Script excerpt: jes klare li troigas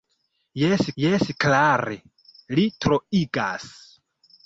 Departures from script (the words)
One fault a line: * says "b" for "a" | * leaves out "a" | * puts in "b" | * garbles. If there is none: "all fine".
* puts in "jes"